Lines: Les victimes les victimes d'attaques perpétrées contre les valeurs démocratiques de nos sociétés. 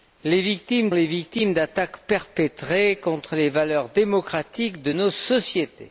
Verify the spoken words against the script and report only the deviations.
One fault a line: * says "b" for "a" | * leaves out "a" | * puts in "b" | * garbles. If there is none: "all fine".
all fine